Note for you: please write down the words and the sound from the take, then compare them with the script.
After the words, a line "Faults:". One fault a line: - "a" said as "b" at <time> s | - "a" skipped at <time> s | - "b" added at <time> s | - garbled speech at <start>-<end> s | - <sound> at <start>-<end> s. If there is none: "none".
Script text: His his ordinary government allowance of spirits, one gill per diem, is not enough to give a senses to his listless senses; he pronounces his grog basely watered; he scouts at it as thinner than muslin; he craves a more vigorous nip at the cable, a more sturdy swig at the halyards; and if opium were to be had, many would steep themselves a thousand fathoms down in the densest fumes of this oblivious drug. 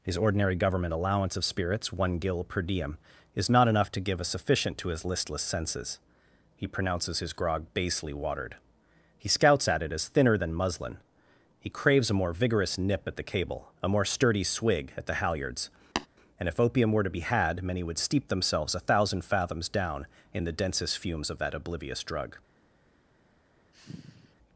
His ordinary government allowance of spirits, one gill per diem, is not enough to give a sufficient to his listless senses; he pronounces his grog basely watered; he scouts at it as thinner than muslin; he craves a more vigorous nip at the cable, a more sturdy swig at the halyards; and if opium were to be had, many would steep themselves a thousand fathoms down in the densest fumes of that oblivious drug.
Faults:
- "his" skipped at 0.2 s
- "senses" said as "sufficient" at 4.2 s
- tap at 16.0-16.1 s
- "this" said as "that" at 21.4 s
- sigh at 23.7-24.4 s